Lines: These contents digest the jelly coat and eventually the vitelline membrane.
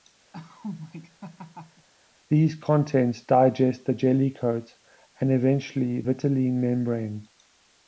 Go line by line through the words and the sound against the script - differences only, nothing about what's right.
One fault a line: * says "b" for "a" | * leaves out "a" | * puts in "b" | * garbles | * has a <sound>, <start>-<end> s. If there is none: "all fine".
* has a laugh, 0.3-1.9 s
* leaves out "the"